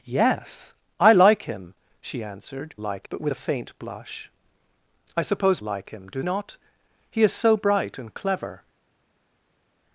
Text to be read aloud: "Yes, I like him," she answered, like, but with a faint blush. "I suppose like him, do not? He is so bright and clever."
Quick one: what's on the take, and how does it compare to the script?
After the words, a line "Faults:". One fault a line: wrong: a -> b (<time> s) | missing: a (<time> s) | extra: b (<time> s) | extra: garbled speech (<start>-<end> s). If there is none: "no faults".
"Yes, I like him," she answered, like, but with a faint blush. "I suppose like him, do not? He is so bright and clever."
Faults:
no faults